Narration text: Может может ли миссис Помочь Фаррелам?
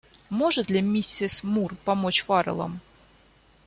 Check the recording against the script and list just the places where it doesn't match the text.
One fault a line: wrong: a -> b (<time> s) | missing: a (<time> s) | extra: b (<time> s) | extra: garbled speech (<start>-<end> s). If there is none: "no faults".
missing: может (0.7 s)
extra: Мур (1.4 s)